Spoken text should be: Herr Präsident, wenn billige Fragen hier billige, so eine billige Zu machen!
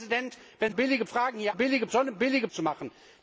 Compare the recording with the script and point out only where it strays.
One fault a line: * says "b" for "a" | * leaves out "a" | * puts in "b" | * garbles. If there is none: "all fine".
all fine